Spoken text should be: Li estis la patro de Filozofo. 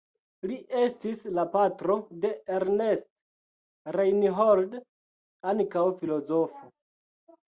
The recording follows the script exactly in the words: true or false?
false